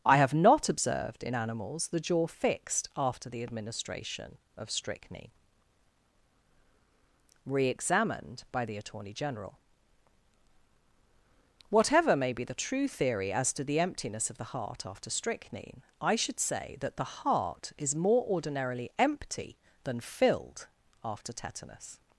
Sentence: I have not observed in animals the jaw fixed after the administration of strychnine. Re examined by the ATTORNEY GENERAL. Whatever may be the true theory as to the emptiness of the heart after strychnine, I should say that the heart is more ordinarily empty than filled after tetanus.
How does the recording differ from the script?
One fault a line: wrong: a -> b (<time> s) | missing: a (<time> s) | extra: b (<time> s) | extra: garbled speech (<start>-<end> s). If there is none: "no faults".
no faults